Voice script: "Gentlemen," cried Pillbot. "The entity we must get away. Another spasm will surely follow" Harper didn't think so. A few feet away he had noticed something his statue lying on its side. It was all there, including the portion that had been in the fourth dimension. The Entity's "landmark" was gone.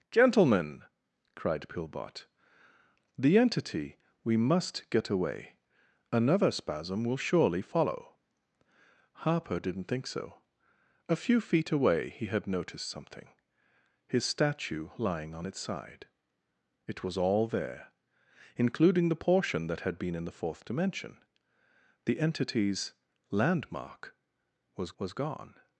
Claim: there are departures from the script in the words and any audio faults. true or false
true